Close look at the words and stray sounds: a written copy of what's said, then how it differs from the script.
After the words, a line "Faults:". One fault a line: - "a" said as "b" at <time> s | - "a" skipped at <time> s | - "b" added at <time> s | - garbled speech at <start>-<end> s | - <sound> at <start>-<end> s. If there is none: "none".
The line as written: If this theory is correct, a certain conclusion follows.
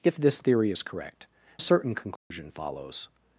If this theory is correct, a certain conclusion follows.
Faults:
- dropout at 2.2-2.3 s